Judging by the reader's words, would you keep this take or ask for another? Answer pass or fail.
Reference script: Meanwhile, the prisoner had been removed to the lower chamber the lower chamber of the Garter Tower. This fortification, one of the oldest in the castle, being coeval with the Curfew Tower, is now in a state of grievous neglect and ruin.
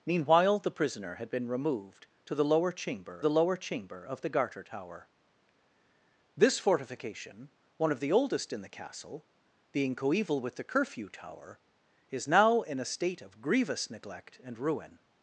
pass